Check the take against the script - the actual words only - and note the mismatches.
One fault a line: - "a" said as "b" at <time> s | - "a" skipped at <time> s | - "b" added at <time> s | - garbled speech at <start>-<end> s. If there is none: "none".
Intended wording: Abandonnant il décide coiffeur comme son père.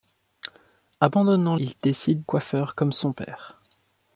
none